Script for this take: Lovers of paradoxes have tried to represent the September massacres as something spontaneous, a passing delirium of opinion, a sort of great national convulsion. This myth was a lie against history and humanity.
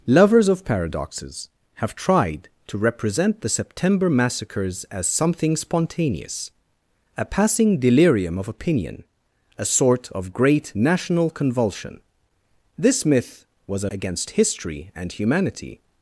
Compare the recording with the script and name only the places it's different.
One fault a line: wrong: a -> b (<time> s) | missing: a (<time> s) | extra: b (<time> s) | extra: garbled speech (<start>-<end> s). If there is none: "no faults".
missing: lie (13.9 s)